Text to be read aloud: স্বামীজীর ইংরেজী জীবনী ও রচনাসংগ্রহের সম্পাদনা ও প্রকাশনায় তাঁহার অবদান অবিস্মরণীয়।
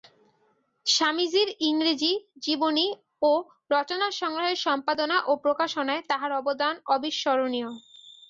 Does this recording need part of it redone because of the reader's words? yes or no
no